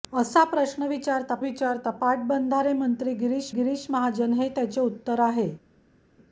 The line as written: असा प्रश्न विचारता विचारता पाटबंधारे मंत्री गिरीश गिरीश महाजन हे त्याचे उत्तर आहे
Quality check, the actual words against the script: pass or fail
pass